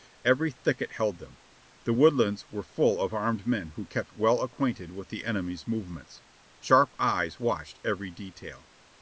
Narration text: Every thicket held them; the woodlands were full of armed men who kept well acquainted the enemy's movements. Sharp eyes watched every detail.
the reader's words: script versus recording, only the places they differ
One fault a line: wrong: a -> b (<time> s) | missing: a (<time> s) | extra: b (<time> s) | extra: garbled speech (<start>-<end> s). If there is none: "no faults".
extra: with (4.9 s)